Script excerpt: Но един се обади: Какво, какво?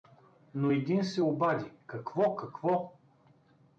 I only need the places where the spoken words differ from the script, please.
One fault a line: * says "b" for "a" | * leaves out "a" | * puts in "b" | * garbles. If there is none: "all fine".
all fine